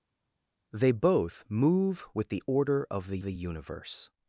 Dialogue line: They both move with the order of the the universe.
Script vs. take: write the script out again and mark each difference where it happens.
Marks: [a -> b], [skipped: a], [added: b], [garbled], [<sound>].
They both move with the order of the the universe.